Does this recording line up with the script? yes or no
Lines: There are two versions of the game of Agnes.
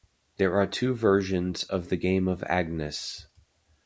yes